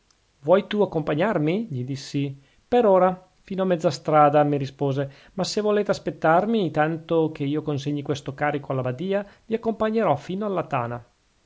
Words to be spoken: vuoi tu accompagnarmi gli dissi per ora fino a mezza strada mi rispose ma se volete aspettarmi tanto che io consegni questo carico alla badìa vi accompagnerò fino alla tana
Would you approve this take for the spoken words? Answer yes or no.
yes